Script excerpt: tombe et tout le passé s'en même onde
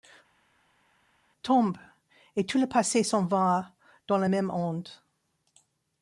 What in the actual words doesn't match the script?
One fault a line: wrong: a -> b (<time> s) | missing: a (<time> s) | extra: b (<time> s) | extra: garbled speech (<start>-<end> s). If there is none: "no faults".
extra: va dans la (3.3 s)